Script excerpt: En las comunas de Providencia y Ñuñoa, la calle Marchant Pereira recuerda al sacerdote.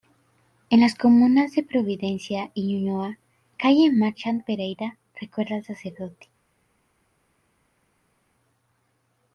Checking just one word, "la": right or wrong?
wrong